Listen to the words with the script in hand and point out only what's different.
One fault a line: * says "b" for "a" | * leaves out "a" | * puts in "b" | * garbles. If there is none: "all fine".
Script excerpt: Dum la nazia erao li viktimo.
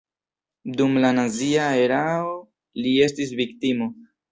* puts in "estis"